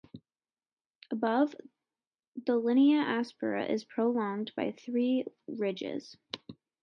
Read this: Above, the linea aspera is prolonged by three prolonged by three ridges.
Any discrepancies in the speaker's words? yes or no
yes